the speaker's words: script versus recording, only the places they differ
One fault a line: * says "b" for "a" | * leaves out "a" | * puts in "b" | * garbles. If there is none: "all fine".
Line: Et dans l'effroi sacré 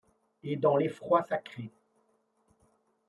all fine